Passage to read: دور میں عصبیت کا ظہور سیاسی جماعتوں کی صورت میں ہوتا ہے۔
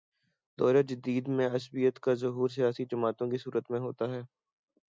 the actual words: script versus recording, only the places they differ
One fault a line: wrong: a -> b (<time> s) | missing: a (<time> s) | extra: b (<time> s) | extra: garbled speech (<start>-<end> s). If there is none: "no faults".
extra: جدید (0.8 s)